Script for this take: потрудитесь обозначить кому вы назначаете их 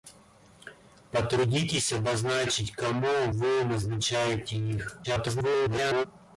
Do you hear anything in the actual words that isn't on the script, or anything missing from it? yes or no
yes